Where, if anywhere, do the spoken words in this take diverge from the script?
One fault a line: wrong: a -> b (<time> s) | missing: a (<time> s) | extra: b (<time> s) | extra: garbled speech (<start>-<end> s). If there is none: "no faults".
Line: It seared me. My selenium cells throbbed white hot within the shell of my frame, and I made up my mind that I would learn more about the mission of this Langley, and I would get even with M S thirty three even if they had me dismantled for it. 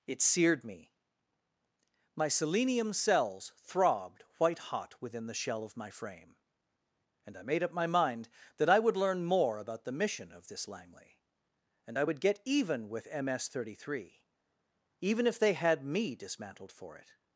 no faults